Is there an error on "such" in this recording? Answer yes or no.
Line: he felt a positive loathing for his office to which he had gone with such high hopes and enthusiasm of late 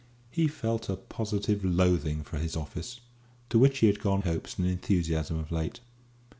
yes